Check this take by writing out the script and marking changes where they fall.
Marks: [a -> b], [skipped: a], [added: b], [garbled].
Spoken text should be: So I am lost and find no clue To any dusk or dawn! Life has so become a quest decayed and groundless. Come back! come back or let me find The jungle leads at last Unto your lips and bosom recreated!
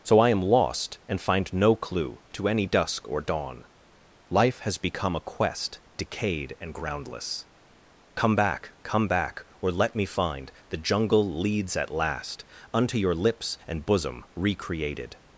So I am lost and find no clue To any dusk or dawn! Life has [skipped: so] become a quest decayed and groundless. Come back! come back or let me find The jungle leads at last Unto your lips and bosom recreated!